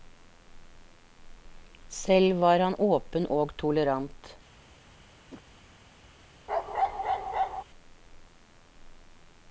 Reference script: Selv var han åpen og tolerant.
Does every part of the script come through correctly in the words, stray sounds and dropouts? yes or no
no